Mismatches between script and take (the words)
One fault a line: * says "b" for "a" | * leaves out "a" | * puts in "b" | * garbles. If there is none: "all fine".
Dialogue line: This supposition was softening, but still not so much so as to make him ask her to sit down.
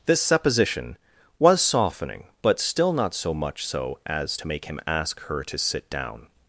all fine